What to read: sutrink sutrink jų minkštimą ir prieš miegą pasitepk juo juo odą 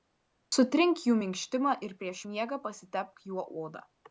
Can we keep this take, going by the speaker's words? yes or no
no